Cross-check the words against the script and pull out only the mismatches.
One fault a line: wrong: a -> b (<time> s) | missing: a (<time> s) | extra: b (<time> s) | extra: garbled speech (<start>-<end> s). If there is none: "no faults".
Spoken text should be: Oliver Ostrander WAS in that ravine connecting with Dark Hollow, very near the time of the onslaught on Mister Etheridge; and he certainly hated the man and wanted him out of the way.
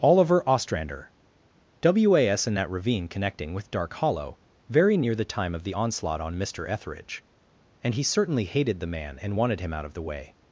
no faults